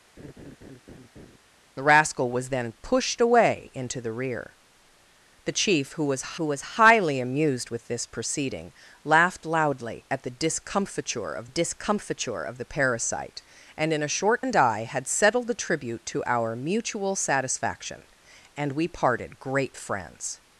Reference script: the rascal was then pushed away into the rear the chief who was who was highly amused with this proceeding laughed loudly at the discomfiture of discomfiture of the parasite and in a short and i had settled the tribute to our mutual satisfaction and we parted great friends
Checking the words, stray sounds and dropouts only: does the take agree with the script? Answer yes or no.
no